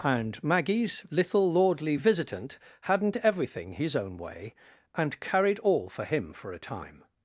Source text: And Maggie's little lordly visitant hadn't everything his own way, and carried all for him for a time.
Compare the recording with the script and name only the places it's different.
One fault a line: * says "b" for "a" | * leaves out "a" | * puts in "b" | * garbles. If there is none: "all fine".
all fine